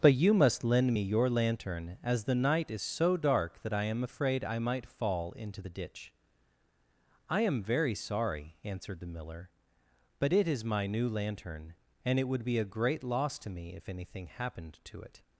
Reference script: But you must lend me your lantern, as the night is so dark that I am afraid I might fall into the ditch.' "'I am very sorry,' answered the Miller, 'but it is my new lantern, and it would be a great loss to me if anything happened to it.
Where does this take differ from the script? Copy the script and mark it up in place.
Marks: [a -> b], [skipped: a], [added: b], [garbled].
But you must lend me your lantern, as the night is so dark that I am afraid I might fall into the ditch.' "'I am very sorry,' answered the Miller, 'but it is my new lantern, and it would be a great loss to me if anything happened to it.